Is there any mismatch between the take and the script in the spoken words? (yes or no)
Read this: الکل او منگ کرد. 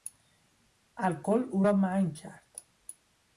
yes